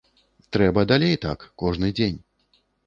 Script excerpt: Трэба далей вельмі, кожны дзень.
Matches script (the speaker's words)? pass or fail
fail